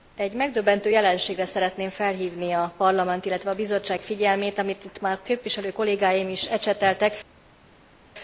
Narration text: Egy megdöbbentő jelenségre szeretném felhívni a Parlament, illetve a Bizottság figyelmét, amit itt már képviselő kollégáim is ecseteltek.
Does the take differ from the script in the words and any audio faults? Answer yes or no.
no